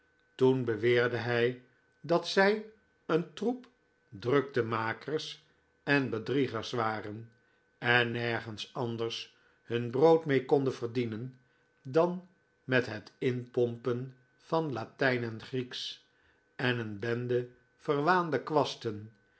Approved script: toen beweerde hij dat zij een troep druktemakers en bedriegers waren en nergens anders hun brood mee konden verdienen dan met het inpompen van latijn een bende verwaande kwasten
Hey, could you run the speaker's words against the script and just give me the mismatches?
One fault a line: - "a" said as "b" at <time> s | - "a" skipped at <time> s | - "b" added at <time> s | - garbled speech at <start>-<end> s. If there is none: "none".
- "en grieksch en" added at 15.2 s